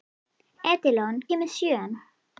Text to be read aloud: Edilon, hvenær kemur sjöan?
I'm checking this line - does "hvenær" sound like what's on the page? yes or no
no